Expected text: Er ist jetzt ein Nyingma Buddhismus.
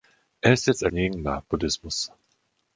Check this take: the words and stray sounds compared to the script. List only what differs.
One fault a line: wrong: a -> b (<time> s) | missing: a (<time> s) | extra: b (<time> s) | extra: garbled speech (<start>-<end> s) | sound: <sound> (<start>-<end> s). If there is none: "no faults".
no faults